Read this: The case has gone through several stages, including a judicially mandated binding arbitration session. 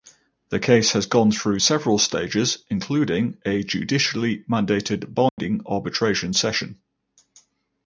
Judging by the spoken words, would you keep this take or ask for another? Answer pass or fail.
pass